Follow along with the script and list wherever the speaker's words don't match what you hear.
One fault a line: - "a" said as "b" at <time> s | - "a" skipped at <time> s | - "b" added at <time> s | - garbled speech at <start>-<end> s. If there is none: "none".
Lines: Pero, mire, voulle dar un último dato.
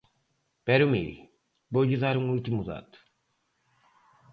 none